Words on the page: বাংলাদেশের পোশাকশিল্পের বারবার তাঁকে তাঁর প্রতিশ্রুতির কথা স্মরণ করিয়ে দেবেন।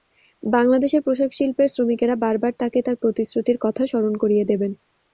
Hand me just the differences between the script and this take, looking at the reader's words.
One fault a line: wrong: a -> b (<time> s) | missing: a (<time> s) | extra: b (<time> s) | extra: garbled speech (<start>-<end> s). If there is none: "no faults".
extra: শ্রমিকেরা (1.7 s)